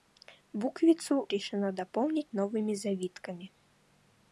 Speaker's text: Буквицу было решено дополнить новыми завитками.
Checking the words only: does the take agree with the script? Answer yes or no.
no